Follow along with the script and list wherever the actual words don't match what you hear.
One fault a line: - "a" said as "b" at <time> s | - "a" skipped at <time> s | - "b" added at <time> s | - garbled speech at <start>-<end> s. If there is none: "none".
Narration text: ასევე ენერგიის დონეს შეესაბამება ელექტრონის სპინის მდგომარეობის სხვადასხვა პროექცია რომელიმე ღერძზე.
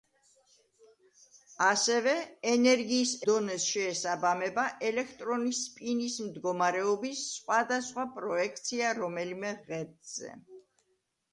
none